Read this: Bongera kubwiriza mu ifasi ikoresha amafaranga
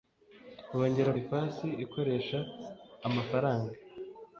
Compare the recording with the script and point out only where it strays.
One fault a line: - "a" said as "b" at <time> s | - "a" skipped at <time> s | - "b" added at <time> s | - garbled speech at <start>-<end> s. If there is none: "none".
- "kubwiriza mu" skipped at 1.1 s